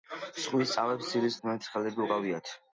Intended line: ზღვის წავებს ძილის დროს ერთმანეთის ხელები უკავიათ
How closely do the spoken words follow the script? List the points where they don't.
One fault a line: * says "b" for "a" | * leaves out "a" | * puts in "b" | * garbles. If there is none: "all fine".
* leaves out "დროს"